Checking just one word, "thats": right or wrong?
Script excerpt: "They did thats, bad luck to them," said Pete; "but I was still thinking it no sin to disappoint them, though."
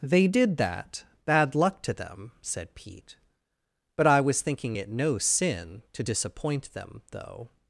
wrong